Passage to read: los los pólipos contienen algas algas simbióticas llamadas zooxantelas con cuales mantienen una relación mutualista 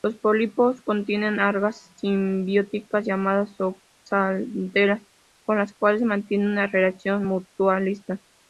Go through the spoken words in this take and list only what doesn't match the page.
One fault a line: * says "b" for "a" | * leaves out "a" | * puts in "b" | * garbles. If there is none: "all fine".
* leaves out "los"
* leaves out "algas"
* puts in "las"